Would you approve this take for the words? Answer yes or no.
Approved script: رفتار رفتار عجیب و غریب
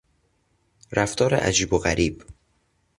no